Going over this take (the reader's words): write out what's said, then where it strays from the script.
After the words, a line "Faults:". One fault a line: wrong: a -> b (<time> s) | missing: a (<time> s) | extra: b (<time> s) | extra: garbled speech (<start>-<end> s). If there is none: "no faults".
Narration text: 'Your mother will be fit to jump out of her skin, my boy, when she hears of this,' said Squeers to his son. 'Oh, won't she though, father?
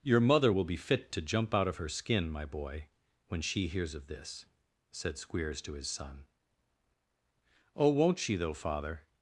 'Your mother will be fit to jump out of her skin, my boy, when she hears of this,' said Squeers to his son. 'Oh, won't she though, father?
Faults:
no faults